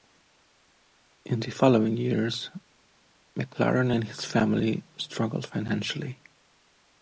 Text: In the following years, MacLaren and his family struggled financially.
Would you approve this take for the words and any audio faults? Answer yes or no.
yes